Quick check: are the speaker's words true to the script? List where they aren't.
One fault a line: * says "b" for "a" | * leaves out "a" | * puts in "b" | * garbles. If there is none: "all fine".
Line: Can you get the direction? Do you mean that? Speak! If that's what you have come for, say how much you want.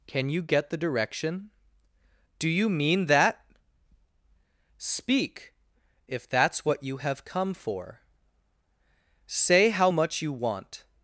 all fine